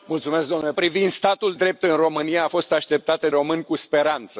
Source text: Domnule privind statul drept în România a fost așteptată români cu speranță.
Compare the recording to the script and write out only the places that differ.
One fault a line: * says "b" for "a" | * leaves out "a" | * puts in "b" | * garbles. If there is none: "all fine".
all fine